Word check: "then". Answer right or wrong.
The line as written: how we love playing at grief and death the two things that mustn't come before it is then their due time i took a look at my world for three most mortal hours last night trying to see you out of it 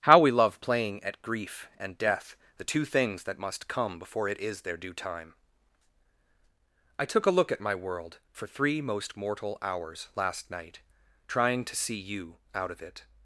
wrong